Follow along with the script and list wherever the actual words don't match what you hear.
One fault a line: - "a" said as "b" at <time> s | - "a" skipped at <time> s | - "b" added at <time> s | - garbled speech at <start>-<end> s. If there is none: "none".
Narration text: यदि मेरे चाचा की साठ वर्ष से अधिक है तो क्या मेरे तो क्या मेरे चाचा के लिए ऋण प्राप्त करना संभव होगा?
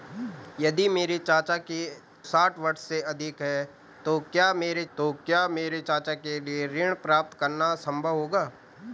none